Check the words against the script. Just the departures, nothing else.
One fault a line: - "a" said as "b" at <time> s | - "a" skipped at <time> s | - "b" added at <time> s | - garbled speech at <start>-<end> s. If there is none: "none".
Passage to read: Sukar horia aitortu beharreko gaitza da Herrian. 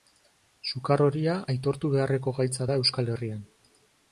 - "Euskal" added at 2.8 s